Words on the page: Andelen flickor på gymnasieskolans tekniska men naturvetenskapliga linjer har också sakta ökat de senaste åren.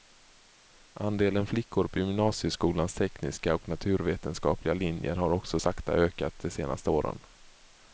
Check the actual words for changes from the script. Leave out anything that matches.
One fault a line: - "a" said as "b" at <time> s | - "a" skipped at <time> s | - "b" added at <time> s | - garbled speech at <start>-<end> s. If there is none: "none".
- "men" said as "och" at 3.6 s